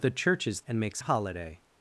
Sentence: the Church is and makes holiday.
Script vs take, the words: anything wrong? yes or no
no